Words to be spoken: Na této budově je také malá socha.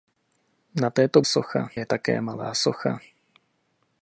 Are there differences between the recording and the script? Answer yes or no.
yes